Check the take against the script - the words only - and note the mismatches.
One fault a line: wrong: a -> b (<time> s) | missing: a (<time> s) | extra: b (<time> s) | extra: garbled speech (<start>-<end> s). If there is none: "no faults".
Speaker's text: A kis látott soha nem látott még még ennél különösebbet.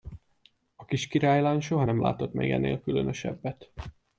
wrong: látott -> királylány (1.1 s)
missing: még (2.5 s)